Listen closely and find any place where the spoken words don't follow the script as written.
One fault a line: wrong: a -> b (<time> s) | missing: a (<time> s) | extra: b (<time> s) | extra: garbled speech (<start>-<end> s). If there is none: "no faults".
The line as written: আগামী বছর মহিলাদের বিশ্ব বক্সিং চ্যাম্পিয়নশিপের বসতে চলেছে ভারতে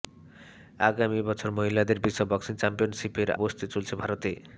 no faults